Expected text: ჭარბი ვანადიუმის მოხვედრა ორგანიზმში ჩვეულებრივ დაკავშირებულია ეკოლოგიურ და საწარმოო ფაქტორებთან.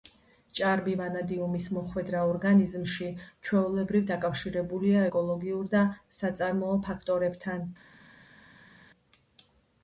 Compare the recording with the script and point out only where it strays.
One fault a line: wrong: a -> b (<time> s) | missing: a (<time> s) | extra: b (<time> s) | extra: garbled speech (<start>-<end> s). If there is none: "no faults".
no faults